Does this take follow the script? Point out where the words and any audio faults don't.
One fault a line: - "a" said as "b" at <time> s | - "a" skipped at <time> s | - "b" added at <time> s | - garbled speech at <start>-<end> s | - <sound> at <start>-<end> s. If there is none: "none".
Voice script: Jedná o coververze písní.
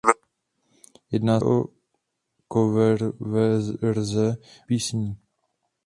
none